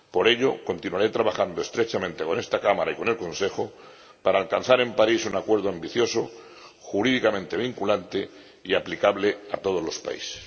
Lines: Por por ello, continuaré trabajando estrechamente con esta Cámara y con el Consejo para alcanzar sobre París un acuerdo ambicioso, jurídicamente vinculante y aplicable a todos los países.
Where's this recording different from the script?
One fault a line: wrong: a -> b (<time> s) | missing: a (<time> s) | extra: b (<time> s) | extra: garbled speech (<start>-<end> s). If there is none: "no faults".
missing: por (0.3 s)
wrong: sobre -> en (4.8 s)